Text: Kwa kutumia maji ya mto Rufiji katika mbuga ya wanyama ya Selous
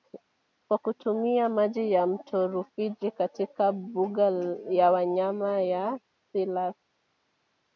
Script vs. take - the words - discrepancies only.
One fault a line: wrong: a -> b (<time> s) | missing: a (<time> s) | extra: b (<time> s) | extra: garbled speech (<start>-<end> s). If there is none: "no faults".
no faults